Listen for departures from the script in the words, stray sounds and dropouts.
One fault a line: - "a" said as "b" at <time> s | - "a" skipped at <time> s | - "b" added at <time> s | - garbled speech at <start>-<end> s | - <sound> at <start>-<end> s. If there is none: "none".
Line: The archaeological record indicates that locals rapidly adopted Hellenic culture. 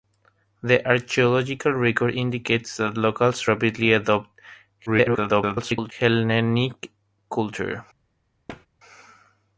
- garbled speech at 4.9-5.9 s
- thud at 8.5-8.7 s